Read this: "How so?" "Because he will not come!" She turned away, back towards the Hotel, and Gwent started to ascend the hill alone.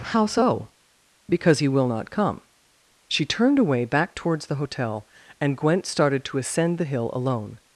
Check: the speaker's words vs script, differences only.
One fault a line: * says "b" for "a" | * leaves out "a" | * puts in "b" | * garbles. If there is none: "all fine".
all fine